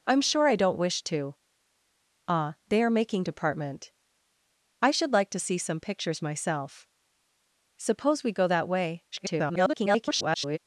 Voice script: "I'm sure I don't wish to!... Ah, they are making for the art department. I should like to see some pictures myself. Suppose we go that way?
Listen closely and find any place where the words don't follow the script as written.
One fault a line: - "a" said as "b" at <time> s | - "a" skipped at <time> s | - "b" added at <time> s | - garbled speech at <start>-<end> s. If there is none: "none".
- "for the art" skipped at 3.2 s
- garbled speech at 9.1-10.6 s